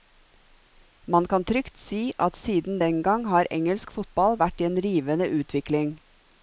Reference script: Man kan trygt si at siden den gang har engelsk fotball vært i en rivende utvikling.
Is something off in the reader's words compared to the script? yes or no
no